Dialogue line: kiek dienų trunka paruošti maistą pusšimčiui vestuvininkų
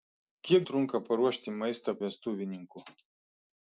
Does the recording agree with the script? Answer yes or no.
no